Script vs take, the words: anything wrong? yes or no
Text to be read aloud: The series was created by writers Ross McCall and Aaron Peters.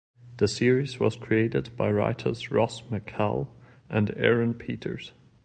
no